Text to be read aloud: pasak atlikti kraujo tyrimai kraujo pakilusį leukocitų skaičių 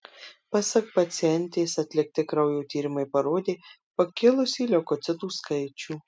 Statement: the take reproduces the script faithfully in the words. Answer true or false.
false